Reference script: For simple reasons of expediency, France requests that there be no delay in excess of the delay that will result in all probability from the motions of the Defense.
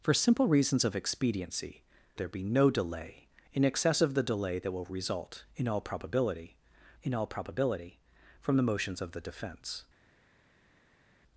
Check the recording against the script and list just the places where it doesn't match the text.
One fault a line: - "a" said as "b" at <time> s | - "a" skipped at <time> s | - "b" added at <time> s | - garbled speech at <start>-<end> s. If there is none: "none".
- "France requests that" skipped at 1.8 s
- "in all probability" added at 7.0 s